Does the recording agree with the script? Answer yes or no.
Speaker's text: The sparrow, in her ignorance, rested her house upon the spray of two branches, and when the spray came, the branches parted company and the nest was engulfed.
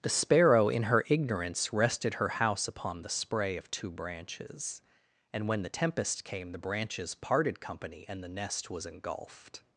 no